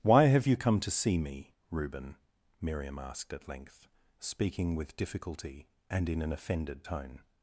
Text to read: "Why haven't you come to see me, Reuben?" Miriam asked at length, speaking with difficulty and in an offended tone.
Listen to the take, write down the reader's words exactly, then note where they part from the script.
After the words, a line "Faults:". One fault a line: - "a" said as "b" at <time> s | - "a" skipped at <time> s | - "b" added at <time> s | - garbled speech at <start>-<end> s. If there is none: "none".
"Why have you come to see me, Reuben?" Miriam asked at length, speaking with difficulty and in an offended tone.
Faults:
- "haven't" said as "have" at 0.2 s